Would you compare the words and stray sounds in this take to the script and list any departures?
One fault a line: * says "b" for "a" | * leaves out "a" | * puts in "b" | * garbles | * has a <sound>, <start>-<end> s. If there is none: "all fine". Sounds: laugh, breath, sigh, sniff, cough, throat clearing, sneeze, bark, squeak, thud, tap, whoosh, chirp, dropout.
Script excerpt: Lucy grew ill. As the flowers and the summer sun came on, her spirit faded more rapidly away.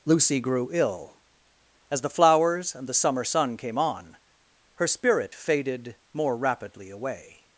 all fine